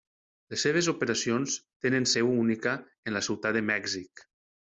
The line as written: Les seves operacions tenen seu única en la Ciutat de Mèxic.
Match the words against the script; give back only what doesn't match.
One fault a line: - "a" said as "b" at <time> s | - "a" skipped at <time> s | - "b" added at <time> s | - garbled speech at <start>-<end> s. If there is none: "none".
none